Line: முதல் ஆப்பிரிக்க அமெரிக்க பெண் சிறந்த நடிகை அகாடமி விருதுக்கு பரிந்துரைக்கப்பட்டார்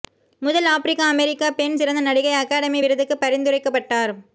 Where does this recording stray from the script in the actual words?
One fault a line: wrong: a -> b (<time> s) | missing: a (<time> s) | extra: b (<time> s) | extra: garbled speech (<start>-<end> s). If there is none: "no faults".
no faults